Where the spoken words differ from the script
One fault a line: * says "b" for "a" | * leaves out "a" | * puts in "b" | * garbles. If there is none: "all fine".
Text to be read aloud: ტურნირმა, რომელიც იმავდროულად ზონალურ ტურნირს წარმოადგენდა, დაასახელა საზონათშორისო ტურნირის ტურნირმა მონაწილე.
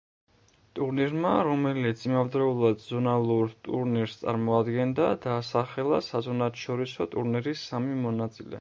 * says "სამი" for "ტურნირმა"